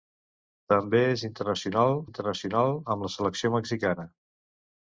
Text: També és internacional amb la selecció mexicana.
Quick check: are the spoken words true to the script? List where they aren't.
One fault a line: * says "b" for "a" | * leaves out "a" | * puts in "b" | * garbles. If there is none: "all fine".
* puts in "internacional"